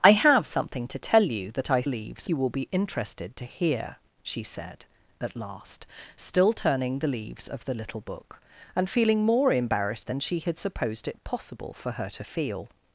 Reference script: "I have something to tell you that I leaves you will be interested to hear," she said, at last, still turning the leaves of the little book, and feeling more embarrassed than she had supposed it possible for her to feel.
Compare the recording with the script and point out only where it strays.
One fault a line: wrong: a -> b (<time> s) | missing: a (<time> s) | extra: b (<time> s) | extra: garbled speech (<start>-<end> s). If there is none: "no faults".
no faults